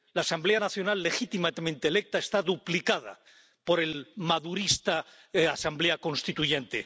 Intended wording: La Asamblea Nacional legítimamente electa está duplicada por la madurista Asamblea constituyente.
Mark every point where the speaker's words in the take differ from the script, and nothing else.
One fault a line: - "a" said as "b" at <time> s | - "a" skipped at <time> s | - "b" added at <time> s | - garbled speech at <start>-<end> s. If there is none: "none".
none